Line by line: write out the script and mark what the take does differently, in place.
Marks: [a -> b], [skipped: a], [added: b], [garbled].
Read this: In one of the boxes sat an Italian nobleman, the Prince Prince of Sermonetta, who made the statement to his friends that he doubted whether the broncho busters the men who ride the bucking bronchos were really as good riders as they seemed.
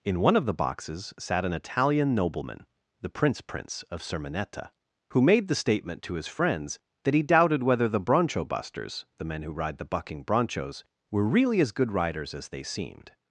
In one of the boxes sat an Italian nobleman, the Prince Prince of Sermonetta, who made the statement to his friends that he doubted whether the broncho busters the men who ride the bucking bronchos were really as good riders as they seemed.